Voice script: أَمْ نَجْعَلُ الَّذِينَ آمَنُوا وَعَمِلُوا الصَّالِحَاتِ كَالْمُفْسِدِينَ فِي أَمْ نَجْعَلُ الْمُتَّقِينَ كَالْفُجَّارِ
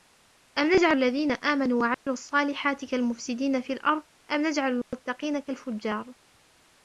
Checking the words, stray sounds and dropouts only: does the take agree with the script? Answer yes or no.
no